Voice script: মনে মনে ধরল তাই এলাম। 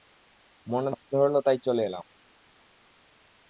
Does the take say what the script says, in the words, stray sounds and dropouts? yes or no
no